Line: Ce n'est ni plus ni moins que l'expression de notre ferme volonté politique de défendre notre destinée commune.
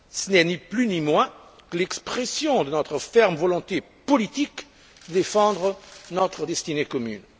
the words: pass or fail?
pass